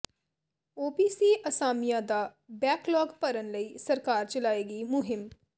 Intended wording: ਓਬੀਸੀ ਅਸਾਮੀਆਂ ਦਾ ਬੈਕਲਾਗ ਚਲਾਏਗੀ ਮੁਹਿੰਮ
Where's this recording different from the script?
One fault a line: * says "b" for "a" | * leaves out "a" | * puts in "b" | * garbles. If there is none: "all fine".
* puts in "ਭਰਨ ਲਈ ਸਰਕਾਰ"